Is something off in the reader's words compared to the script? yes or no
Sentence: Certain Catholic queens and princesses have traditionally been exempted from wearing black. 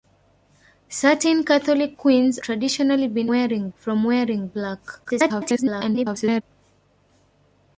yes